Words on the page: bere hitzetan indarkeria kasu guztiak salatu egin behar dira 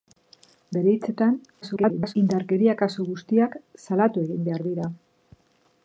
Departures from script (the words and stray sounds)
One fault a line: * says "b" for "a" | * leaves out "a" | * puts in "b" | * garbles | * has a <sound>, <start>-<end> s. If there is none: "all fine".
* garbles